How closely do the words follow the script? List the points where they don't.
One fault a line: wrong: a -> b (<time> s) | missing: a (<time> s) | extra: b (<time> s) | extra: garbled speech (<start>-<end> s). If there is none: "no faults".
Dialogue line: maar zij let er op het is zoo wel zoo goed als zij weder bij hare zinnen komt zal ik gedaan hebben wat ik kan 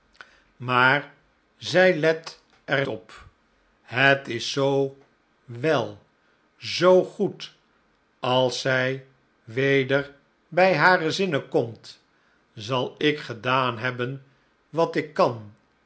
no faults